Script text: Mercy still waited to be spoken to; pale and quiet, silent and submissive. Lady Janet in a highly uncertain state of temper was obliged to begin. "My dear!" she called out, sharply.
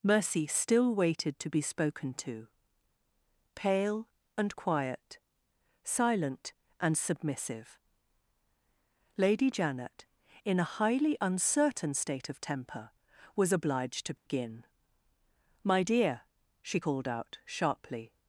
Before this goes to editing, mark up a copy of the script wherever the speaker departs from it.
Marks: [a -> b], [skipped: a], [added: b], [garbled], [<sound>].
Mercy still waited to be spoken to; pale and quiet, silent and submissive. Lady Janet in a highly uncertain state of temper was obliged to begin. [dropout] "My dear!" she called out, sharply.